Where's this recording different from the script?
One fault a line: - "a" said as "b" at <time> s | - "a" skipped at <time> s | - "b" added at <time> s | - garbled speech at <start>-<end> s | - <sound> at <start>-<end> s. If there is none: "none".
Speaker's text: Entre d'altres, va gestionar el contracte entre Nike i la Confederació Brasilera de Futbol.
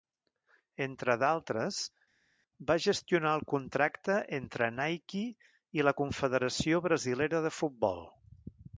none